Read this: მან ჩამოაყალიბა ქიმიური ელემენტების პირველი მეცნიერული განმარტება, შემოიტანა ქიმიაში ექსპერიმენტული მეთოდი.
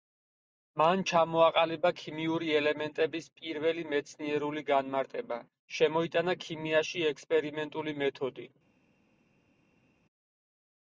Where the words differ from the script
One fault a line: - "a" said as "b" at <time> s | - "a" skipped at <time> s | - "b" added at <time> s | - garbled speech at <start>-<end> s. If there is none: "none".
none